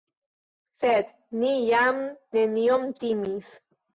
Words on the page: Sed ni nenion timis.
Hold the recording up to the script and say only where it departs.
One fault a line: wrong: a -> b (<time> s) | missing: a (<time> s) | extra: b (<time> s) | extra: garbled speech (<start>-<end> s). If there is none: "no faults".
extra: jam (1.7 s)